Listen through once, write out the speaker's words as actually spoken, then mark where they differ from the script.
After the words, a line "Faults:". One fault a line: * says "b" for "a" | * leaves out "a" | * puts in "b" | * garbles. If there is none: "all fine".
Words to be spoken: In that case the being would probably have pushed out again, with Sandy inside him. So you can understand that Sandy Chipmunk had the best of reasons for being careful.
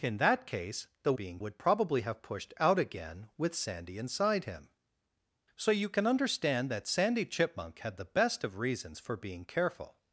In that case the being would probably have pushed out again, with Sandy inside him. So you can understand that Sandy Chipmunk had the best of reasons for being careful.
Faults:
all fine